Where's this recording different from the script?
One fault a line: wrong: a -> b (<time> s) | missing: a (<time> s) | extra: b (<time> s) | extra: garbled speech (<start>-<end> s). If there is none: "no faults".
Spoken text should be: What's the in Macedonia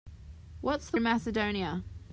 no faults